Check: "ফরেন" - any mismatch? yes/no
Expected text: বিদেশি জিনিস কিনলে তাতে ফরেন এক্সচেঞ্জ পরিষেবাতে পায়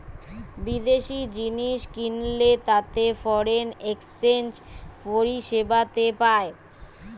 no